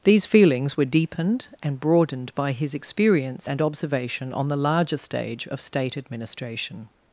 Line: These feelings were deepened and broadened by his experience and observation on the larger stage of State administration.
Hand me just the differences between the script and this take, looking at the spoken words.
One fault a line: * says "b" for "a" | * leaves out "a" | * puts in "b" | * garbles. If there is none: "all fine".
all fine